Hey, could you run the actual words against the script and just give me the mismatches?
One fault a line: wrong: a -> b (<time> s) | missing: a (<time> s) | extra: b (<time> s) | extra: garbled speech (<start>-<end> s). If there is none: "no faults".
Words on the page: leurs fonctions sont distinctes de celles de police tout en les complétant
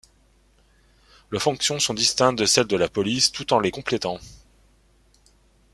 extra: la (2.8 s)